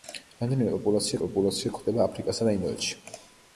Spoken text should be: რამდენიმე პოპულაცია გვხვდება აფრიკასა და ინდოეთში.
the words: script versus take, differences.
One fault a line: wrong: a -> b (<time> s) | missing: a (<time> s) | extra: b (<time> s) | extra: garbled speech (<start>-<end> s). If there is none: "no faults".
extra: პოპულაცია (1.2 s)